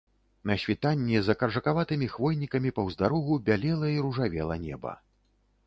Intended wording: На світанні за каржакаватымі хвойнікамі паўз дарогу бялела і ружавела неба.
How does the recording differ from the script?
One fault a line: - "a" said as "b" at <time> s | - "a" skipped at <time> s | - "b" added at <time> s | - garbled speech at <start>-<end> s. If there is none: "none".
none